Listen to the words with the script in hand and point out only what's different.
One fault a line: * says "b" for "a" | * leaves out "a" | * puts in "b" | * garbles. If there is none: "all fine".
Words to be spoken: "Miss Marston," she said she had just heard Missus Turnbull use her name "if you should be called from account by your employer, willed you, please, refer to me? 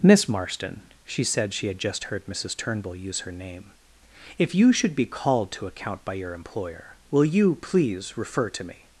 * says "to" for "from"
* says "will" for "willed"